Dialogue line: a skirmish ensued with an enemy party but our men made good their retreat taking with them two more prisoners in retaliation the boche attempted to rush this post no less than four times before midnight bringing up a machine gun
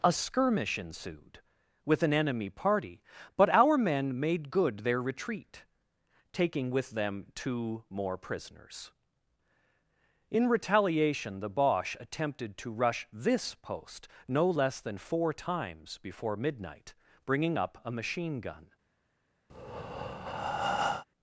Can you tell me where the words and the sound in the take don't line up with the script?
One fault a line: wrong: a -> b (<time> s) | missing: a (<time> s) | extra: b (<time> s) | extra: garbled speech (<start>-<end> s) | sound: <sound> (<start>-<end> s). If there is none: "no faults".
sound: breath (19.5-21.0 s)